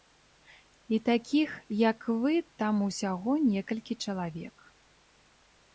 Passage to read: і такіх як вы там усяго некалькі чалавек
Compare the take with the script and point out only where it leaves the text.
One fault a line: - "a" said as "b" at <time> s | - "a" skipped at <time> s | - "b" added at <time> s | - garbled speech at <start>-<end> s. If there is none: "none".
none